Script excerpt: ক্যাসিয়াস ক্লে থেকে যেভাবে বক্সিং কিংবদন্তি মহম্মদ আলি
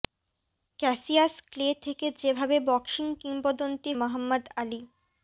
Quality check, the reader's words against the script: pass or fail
pass